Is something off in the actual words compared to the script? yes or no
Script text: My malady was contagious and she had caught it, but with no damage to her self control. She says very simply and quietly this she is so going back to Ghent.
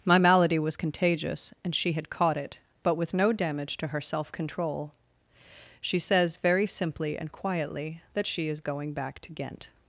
yes